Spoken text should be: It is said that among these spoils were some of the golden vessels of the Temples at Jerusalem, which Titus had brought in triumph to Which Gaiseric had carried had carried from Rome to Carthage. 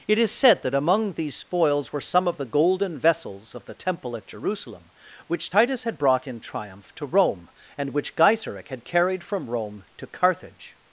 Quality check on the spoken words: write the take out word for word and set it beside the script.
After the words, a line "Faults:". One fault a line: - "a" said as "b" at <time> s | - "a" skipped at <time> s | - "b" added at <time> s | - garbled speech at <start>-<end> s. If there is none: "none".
It is said that among these spoils were some of the golden vessels of the Temple at Jerusalem, which Titus had brought in triumph to Rome, and which Gaiseric had carried from Rome to Carthage.
Faults:
- "Temples" said as "Temple" at 3.7 s
- "Rome and" added at 7.1 s
- "had carried" skipped at 9.2 s